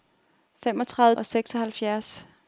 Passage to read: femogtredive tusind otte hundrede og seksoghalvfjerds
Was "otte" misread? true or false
true